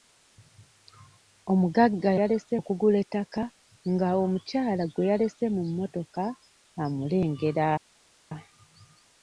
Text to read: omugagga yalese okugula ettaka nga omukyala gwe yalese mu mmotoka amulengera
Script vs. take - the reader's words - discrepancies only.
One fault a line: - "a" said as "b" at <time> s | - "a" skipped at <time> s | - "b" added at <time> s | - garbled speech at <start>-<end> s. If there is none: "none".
none